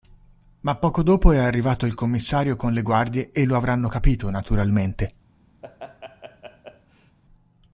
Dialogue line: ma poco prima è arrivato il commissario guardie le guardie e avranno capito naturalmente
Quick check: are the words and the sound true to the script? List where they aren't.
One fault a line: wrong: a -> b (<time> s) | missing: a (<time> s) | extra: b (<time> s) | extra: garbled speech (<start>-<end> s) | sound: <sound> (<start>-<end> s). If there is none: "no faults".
wrong: prima -> dopo (1.0 s)
wrong: guardie -> con (2.5 s)
extra: lo (3.4 s)
sound: laugh (5.6-7.2 s)